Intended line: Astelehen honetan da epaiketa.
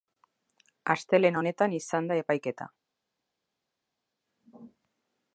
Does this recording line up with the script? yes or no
no